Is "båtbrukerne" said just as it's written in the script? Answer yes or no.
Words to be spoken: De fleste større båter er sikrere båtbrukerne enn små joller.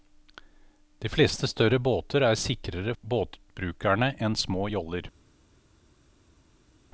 yes